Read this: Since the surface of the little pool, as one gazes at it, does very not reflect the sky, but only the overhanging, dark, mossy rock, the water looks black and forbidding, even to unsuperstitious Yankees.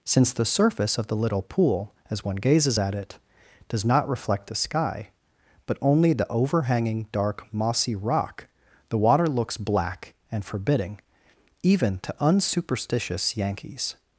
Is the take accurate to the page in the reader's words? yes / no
no